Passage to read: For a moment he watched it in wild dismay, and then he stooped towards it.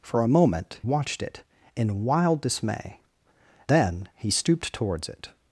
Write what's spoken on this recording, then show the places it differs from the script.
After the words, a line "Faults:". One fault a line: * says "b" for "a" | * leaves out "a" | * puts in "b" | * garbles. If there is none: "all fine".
For a moment watched it in wild dismay, then he stooped towards it.
Faults:
* leaves out "he"
* leaves out "and"